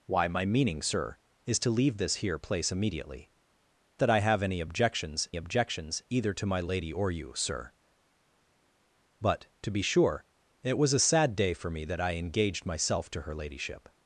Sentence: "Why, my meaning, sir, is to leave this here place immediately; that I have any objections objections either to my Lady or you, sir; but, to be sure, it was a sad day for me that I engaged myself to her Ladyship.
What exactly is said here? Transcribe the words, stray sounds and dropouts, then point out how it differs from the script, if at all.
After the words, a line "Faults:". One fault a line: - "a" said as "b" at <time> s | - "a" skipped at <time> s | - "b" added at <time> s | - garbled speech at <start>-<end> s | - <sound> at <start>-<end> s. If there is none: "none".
"Why, my meaning, sir, is to leave this here place immediately; that I have any objections objections either to my Lady or you, sir; but, to be sure, it was a sad day for me that I engaged myself to her Ladyship.
Faults:
none